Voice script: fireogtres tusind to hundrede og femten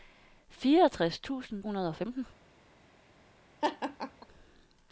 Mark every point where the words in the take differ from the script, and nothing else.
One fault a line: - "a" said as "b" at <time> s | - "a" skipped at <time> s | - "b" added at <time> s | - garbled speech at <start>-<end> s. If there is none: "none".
- "to" skipped at 1.6 s